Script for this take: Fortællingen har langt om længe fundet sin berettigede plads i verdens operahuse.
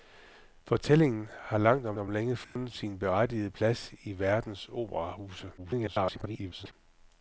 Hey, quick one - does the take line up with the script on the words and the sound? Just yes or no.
no